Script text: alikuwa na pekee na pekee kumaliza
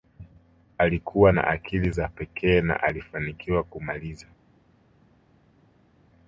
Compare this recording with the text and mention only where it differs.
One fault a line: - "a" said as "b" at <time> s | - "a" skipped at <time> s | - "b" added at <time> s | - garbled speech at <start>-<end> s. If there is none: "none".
- "akili za" added at 1.5 s
- "pekee" said as "alifanikiwa" at 2.8 s